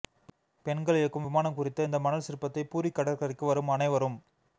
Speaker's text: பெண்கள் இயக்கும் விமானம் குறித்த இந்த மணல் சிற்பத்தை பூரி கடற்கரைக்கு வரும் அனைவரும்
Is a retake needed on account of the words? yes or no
no